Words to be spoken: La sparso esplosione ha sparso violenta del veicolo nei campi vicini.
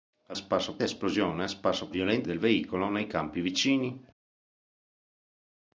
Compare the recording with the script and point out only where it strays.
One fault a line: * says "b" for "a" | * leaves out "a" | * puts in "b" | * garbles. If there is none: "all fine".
all fine